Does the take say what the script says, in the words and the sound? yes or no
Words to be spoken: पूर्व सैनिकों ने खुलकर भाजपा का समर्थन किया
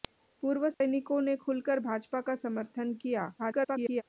no